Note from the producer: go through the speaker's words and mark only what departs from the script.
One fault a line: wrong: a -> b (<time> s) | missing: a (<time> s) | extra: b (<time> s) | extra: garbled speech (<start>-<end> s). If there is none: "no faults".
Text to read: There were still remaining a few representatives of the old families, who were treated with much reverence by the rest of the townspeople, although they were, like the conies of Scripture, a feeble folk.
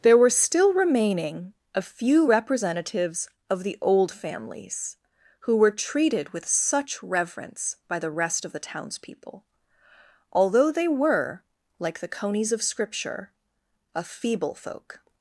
wrong: much -> such (6.5 s)